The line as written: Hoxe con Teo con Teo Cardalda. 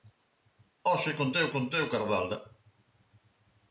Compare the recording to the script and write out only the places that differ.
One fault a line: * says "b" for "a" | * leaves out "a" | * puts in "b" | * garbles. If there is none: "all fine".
all fine